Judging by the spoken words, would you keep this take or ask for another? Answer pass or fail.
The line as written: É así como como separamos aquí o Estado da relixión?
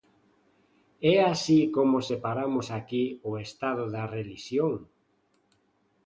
fail